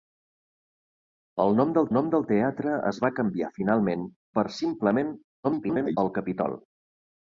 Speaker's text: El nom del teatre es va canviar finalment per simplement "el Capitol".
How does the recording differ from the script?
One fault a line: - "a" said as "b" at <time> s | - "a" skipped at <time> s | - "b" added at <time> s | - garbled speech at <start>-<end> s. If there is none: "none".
- "nom del" added at 2.0 s
- garbled speech at 5.4-6.0 s